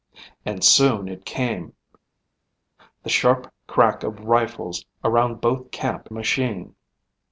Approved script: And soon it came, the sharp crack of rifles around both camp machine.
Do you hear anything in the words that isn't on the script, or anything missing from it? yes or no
no